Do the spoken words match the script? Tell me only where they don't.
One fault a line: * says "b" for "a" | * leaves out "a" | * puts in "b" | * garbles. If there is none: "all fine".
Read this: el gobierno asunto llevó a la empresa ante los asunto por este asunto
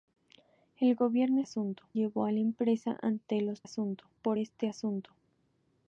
all fine